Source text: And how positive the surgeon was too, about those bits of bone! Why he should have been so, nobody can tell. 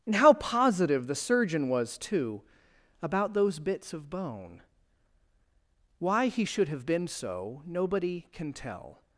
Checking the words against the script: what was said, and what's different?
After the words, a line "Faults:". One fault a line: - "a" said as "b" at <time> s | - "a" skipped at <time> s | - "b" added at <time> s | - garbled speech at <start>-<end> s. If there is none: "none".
And how positive the surgeon was too, about those bits of bone! Why he should have been so, nobody can tell.
Faults:
none